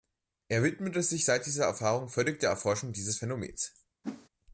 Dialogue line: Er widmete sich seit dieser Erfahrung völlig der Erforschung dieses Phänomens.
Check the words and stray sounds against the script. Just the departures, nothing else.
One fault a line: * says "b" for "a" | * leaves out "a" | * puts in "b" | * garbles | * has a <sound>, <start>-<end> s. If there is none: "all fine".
* has a whoosh, 4.0-4.3 s